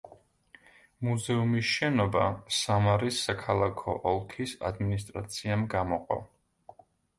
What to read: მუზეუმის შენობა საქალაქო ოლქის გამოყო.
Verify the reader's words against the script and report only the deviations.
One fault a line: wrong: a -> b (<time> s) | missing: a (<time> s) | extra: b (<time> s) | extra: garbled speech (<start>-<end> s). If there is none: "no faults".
extra: სამარის (2.6 s)
extra: ადმინისტრაციამ (4.7 s)